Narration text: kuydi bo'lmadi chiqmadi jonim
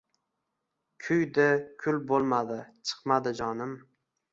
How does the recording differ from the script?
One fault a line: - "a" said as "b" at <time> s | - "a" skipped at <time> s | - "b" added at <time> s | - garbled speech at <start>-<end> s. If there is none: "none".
- "kul" added at 1.9 s